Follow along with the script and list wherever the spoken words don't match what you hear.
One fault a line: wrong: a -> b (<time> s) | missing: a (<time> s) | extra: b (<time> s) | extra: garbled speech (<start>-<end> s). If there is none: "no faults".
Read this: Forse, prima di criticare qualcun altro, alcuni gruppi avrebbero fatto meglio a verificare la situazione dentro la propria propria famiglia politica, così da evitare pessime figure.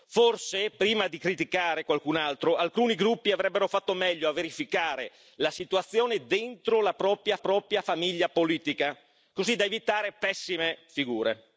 no faults